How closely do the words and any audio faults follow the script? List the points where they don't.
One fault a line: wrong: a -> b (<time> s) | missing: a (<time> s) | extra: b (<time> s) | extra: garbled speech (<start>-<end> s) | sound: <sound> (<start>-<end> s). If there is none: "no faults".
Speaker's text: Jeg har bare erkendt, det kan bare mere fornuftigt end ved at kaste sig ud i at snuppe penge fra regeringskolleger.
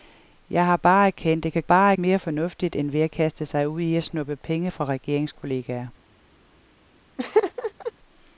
sound: laugh (7.2-7.9 s)